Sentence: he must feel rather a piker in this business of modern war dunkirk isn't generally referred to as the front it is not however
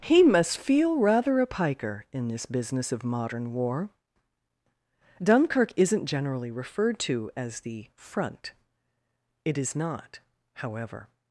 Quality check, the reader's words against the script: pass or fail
pass